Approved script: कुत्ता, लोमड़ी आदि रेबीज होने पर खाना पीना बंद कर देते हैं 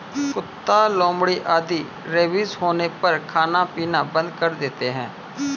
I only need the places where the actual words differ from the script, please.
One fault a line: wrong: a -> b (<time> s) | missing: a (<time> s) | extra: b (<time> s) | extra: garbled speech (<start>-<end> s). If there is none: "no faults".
no faults